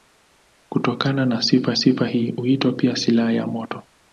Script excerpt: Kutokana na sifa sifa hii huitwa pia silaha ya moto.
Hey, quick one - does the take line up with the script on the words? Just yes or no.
yes